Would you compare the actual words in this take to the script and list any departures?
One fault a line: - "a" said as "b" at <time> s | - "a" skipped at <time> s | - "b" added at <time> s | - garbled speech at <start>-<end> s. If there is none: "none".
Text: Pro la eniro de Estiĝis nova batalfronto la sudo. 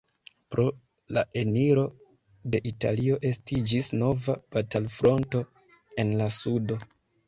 - "Italio" added at 2.7 s
- "en" added at 6.1 s